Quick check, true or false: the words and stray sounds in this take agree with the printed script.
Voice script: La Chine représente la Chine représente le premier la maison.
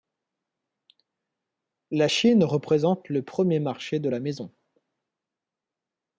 false